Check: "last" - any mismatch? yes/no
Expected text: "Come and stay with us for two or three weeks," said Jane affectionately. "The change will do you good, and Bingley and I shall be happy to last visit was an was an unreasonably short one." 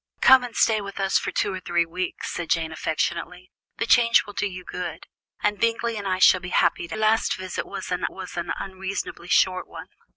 no